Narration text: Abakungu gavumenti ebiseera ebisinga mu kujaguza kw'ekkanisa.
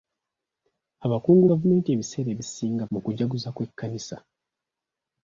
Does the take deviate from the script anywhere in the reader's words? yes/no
no